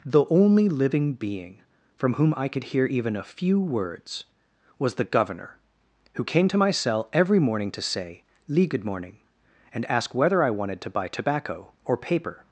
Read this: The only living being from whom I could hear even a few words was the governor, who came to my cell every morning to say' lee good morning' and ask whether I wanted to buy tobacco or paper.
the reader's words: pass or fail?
pass